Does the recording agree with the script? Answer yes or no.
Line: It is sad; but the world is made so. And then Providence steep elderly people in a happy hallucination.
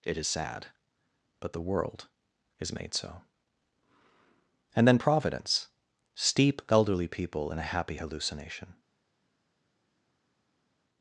yes